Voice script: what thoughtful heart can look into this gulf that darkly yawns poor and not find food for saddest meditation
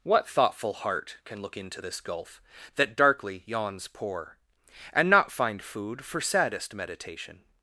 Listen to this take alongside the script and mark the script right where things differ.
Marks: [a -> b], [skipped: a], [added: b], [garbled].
what thoughtful heart can look into this gulf that darkly yawns poor and not find food for saddest meditation